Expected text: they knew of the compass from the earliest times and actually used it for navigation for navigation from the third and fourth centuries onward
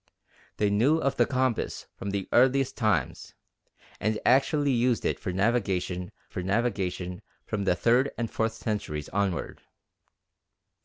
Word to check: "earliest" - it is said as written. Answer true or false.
true